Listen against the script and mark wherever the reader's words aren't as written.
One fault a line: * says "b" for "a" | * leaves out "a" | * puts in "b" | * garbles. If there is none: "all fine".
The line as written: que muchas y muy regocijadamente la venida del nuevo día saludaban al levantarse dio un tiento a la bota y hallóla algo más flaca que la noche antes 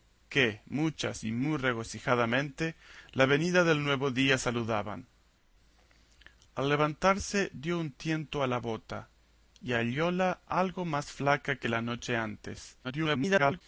* garbles